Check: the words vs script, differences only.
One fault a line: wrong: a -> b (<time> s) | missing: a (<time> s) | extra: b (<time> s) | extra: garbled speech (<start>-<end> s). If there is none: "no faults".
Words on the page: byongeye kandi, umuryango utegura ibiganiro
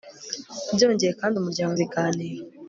missing: utegura (1.7 s)